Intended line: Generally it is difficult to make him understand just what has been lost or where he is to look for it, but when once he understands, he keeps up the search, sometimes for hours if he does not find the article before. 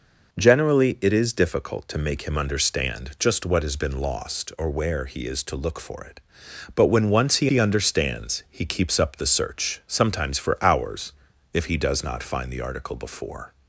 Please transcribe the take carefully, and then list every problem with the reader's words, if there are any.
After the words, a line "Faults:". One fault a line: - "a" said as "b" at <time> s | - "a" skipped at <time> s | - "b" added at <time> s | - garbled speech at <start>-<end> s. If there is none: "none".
Generally it is difficult to make him understand just what has been lost or where he is to look for it, but when once he he understands, he keeps up the search, sometimes for hours if he does not find the article before.
Faults:
- "he" added at 7.5 s